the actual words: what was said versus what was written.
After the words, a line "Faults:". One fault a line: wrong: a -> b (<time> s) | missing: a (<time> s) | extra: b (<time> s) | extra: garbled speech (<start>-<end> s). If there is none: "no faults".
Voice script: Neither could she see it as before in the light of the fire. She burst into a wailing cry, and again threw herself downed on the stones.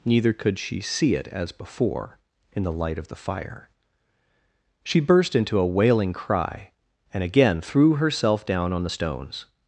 Neither could she see it as before in the light of the fire. She burst into a wailing cry, and again threw herself down on the stones.
Faults:
wrong: downed -> down (8.4 s)